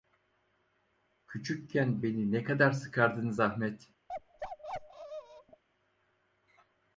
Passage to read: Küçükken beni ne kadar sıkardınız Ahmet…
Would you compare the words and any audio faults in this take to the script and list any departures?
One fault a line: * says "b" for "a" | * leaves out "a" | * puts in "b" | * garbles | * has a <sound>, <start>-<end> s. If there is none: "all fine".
* has a bark, 4.1-5.6 s